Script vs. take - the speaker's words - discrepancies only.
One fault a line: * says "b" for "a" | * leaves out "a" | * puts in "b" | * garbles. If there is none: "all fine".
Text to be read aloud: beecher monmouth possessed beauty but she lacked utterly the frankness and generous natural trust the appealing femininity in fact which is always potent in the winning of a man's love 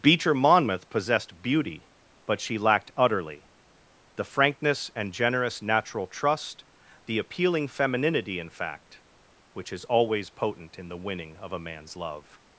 all fine